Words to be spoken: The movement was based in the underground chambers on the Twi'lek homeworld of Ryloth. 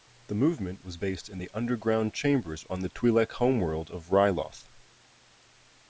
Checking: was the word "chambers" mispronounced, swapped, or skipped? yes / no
no